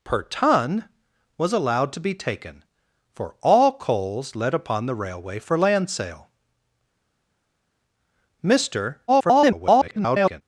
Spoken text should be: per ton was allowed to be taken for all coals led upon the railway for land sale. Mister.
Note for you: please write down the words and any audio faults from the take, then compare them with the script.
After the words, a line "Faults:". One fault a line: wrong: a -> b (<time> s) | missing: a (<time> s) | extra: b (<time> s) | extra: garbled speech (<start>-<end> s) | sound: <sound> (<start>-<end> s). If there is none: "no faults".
per ton was allowed to be taken for all coals led upon the railway for land sale. Mister. [garbled]
Faults:
extra: garbled speech (9.1-10.4 s)